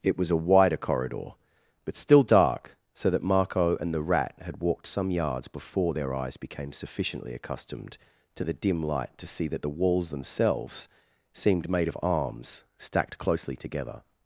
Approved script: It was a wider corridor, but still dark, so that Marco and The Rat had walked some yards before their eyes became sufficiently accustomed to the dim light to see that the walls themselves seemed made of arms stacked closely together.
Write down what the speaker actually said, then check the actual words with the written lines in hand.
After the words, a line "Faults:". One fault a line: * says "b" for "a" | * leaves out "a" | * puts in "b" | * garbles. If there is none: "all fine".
It was a wider corridor, but still dark, so that Marco and The Rat had walked some yards before their eyes became sufficiently accustomed to the dim light to see that the walls themselves seemed made of arms stacked closely together.
Faults:
all fine